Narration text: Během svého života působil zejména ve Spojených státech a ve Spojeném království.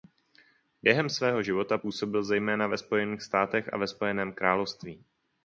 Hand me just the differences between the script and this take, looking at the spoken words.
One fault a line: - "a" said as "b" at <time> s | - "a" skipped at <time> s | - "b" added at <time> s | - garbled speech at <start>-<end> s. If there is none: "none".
none